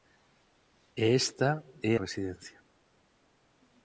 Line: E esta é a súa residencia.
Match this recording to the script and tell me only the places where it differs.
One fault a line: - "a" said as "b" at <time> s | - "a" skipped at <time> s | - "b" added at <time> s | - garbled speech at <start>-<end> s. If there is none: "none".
- "a súa" skipped at 1.9 s